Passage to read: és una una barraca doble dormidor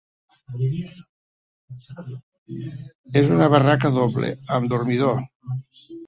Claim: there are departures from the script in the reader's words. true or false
true